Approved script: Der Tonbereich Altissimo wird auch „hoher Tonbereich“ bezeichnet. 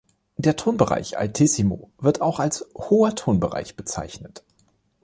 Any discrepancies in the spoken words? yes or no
yes